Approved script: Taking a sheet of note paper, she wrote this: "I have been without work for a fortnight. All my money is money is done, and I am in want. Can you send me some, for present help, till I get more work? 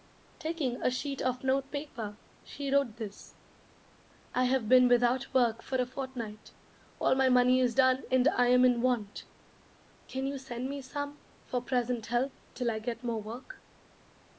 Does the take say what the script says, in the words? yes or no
no